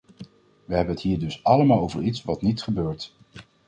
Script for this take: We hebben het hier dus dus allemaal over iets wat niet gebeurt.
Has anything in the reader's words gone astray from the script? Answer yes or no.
yes